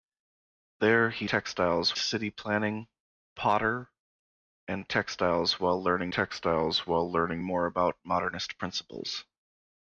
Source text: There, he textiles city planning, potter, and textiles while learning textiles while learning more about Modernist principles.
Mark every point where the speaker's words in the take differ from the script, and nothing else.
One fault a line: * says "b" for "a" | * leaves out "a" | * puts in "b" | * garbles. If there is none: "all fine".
all fine